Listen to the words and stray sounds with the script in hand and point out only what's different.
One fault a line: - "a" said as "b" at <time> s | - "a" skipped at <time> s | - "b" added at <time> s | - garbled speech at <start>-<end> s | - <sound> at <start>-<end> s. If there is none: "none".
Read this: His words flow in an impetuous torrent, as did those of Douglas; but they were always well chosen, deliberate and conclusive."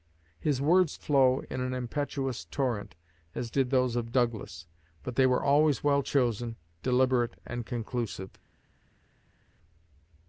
none